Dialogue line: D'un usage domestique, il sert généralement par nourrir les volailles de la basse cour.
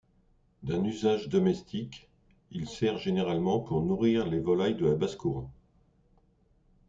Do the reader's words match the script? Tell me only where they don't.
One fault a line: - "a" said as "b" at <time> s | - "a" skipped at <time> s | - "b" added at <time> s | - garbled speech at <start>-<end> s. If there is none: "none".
- "par" said as "pour" at 3.6 s